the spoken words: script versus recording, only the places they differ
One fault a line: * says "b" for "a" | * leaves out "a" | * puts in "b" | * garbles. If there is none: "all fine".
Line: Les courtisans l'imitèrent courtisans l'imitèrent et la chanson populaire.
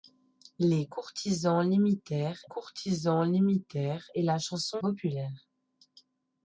all fine